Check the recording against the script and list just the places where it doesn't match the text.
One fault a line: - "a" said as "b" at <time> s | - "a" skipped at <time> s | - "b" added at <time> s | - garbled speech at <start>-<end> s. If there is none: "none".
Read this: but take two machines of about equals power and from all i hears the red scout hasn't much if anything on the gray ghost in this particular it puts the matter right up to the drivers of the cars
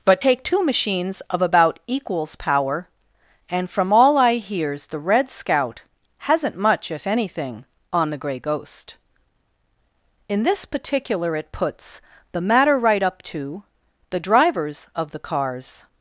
none